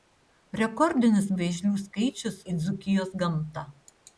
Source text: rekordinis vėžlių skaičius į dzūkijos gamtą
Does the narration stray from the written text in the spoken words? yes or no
no